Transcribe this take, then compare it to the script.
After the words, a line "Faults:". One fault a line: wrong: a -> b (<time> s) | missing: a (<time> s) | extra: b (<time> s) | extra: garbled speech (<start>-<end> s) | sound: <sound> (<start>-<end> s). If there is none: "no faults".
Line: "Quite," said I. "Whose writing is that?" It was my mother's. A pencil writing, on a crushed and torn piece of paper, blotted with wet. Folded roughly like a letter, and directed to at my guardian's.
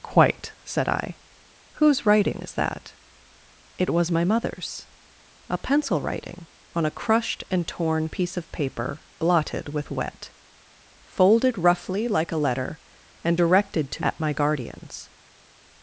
"Quite," said I. "Whose writing is that?" It was my mother's. A pencil writing, on a crushed and torn piece of paper, blotted with wet. Folded roughly like a letter, and directed to at my guardian's.
Faults:
no faults